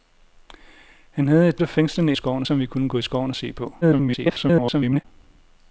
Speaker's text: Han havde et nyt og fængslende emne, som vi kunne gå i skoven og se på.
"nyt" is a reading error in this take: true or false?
true